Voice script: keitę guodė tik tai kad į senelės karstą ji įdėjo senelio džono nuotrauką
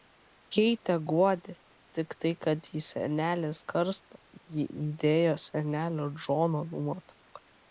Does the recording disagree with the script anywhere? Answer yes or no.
no